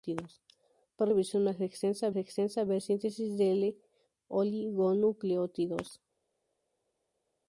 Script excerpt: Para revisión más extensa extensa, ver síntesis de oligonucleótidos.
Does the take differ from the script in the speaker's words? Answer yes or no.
no